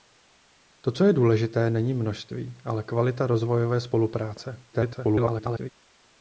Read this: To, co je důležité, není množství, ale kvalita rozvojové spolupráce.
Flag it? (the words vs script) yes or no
yes